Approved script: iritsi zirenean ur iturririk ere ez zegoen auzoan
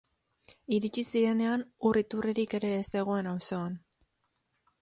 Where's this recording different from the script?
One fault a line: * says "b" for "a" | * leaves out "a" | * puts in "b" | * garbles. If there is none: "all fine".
all fine